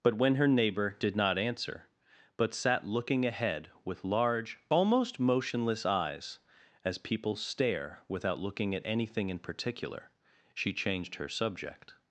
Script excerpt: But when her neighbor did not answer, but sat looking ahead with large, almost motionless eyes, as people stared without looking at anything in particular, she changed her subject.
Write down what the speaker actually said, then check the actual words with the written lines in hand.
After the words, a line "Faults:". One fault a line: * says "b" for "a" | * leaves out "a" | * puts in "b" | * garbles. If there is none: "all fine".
But when her neighbor did not answer, but sat looking ahead with large, almost motionless eyes, as people stare without looking at anything in particular, she changed her subject.
Faults:
* says "stare" for "stared"